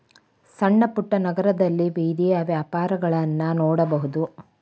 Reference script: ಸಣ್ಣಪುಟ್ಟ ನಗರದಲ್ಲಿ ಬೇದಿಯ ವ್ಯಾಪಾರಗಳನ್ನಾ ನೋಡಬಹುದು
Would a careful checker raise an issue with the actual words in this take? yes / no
no